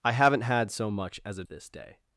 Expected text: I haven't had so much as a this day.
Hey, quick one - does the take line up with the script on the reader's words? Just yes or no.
yes